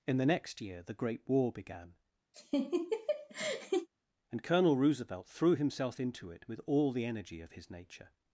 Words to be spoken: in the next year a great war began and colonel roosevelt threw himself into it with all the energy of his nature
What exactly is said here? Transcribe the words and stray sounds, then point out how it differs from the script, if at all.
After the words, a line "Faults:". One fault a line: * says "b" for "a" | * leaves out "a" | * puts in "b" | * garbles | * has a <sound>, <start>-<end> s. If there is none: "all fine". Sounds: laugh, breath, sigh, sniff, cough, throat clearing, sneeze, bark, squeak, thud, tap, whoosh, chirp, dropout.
in the next year the great war began and colonel roosevelt threw himself into it with all the energy of his nature
Faults:
* says "the" for "a"
* has a laugh, 2.3-3.9 s